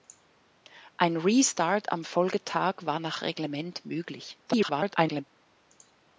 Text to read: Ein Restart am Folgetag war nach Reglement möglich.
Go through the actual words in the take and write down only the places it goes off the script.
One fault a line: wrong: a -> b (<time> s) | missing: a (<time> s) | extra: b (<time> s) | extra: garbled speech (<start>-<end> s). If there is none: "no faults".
extra: garbled speech (4.5-5.2 s)